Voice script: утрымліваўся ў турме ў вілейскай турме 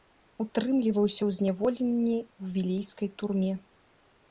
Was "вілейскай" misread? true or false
false